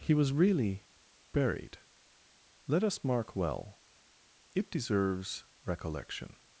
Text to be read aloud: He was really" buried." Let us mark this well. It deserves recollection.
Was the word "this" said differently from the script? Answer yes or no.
yes